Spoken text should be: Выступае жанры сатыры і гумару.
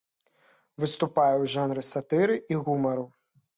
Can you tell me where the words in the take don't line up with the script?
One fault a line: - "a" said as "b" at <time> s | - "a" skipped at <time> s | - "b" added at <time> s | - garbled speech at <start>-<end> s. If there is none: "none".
- "ў" added at 1.4 s